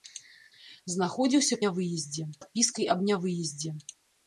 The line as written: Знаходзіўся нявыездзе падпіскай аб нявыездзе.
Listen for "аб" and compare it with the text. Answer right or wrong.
right